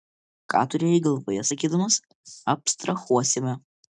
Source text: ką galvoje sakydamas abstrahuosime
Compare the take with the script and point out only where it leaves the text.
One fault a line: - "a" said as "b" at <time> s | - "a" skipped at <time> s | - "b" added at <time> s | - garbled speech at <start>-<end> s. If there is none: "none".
- "turėjai" added at 0.7 s